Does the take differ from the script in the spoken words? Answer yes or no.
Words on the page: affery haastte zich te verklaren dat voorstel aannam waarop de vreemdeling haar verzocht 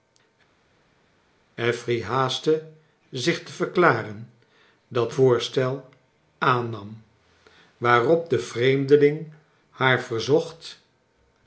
no